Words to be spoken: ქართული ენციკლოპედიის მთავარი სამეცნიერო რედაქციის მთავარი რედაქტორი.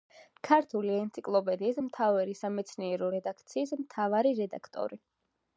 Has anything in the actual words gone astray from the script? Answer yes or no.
no